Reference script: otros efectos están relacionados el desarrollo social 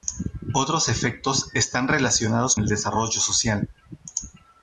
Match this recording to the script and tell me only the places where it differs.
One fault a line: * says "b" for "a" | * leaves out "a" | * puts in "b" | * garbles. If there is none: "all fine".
all fine